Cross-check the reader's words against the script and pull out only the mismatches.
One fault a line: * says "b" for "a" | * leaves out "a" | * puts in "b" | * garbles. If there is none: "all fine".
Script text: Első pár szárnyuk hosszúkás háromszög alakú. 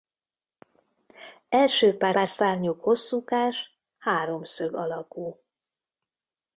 * puts in "pár"